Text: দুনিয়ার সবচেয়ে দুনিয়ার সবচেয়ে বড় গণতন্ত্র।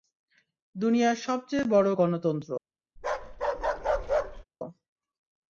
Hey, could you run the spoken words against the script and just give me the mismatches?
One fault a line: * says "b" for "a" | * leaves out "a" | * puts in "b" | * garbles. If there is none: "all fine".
* leaves out "দুনিয়ার সবচেয়ে"